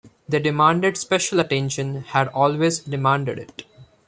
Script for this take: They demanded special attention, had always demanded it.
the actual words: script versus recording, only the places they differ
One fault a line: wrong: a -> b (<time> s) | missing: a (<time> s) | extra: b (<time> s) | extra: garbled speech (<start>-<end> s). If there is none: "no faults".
no faults